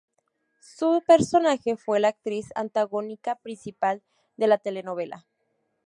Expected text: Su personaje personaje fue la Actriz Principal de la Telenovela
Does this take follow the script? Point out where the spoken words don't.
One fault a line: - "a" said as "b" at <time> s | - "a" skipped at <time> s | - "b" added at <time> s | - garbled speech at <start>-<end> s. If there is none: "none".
- "personaje" skipped at 1.8 s
- "Antagónica" added at 2.5 s